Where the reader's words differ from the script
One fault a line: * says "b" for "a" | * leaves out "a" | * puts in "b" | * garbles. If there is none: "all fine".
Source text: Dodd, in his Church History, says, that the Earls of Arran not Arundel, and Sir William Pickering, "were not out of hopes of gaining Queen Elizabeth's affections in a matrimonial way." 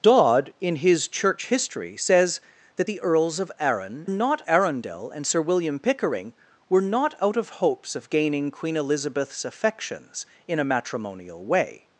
all fine